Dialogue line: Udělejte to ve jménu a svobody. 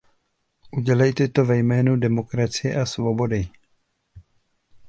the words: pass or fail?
fail